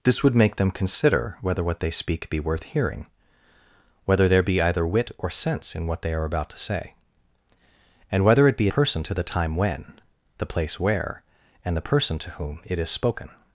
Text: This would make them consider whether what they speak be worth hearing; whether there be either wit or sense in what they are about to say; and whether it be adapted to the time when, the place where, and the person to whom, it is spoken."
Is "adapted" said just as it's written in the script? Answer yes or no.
no